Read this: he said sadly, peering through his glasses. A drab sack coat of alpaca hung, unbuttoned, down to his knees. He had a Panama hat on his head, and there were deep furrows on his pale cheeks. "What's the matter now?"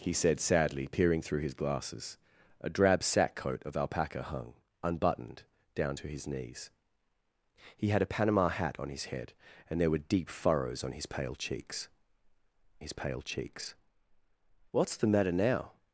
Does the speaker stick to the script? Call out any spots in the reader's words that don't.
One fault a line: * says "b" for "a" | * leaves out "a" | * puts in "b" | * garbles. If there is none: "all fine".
* puts in "his pale cheeks"